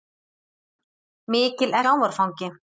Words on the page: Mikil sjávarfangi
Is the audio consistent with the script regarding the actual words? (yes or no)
yes